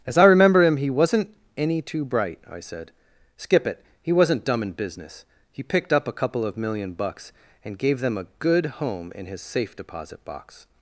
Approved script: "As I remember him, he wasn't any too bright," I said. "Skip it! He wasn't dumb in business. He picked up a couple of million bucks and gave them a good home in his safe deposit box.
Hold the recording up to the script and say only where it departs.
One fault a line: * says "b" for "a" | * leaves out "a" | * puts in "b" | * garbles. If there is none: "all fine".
all fine